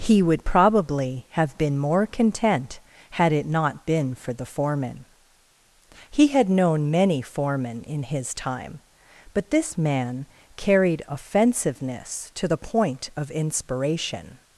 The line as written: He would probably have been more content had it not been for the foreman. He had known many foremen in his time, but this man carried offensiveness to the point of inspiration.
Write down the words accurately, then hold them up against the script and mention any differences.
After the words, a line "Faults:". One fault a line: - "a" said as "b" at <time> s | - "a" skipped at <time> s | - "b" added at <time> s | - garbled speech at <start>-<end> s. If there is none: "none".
He would probably have been more content had it not been for the foreman. He had known many foremen in his time, but this man carried offensiveness to the point of inspiration.
Faults:
none